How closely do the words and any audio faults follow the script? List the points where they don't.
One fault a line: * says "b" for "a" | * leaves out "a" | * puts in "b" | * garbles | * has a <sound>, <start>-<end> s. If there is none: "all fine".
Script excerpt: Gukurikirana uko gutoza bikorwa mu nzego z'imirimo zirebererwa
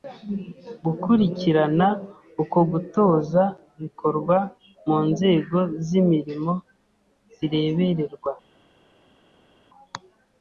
all fine